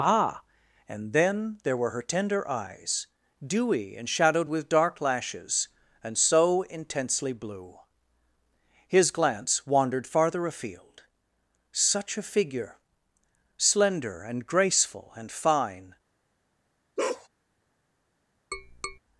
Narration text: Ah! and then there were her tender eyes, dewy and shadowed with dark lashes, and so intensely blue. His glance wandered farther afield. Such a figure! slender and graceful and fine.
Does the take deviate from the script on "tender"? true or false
false